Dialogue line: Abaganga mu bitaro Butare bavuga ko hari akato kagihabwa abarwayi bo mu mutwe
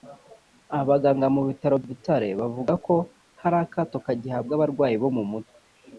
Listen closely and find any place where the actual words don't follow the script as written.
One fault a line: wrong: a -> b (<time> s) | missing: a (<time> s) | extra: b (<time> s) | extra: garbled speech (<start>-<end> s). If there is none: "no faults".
no faults